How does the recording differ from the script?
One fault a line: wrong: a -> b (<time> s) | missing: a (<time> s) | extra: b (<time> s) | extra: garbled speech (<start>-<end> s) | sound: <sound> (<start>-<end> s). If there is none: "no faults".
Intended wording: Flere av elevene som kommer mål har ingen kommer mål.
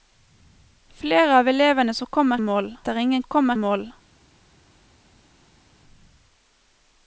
no faults